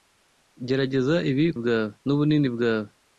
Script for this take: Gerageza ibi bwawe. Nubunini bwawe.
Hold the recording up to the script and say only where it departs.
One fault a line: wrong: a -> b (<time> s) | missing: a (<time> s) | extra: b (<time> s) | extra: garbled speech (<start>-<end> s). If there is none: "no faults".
no faults